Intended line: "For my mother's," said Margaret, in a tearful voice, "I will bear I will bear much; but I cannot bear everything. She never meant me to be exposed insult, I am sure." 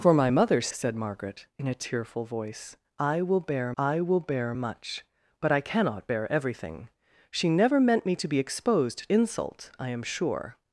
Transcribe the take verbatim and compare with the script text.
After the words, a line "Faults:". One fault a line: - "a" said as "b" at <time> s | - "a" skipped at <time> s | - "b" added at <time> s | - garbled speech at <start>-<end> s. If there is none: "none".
"For my mother's," said Margaret, in a tearful voice, "I will bear I will bear much; but I cannot bear everything. She never meant me to be exposed insult, I am sure."
Faults:
none